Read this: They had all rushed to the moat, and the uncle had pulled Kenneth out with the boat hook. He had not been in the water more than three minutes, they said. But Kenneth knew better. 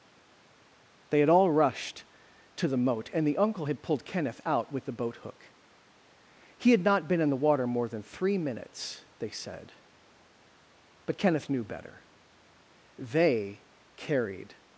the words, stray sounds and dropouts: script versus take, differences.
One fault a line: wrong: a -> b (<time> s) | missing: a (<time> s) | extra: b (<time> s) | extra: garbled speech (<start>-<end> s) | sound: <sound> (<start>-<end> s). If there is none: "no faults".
extra: They carried (13.0 s)